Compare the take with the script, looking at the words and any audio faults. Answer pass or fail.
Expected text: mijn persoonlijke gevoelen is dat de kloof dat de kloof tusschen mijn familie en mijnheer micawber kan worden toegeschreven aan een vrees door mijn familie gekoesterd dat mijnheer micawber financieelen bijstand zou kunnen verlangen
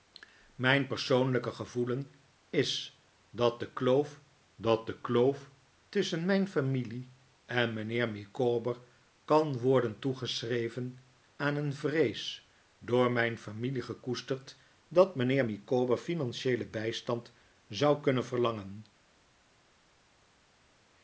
pass